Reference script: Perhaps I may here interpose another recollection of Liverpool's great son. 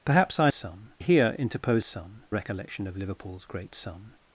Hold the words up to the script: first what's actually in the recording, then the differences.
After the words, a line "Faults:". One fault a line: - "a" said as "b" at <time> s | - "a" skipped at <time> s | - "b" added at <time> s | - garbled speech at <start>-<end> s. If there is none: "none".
Perhaps I son here interpose son recollection of Liverpool's great son.
Faults:
- "may" said as "son" at 0.5 s
- "another" said as "son" at 1.8 s